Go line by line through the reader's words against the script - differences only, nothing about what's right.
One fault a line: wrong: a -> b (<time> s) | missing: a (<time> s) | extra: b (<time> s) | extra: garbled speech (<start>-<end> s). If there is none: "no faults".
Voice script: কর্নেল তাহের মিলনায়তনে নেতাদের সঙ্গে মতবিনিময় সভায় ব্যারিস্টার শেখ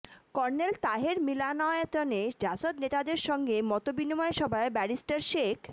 extra: জাসদ (2.4 s)